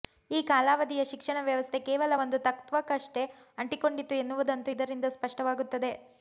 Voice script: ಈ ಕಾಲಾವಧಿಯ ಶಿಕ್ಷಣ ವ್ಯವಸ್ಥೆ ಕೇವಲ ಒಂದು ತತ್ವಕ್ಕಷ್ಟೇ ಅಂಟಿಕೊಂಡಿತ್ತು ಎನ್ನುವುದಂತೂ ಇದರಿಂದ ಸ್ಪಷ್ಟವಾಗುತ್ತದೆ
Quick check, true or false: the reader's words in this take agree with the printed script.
true